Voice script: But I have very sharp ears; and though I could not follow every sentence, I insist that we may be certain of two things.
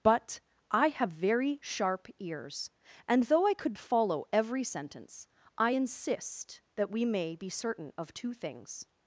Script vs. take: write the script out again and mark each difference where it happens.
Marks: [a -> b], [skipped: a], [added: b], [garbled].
But I have very sharp ears; and though I could [skipped: not] follow every sentence, I insist that we may be certain of two things.